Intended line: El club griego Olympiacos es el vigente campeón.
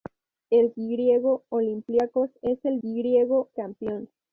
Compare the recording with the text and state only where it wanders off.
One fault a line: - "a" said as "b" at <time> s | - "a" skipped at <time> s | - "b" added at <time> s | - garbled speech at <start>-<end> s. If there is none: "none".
- "club" skipped at 0.7 s
- "vigente" said as "griego" at 2.8 s